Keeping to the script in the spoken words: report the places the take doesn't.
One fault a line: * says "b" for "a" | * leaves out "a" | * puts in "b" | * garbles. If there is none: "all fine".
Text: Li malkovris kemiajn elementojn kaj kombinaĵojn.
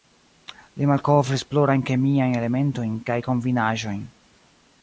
* puts in "plurajn"